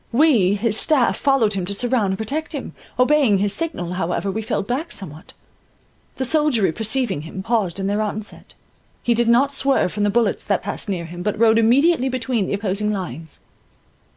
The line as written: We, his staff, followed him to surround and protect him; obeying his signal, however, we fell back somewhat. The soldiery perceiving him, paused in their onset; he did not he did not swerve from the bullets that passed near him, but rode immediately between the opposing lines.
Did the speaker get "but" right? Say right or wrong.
right